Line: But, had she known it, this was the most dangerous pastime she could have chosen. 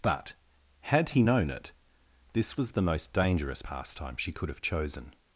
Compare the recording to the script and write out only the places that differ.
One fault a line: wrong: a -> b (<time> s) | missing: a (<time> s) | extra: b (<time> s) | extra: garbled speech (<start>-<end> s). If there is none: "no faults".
wrong: she -> he (1.1 s)